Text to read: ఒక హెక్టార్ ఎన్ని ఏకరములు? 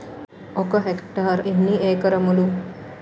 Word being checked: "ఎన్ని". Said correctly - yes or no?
yes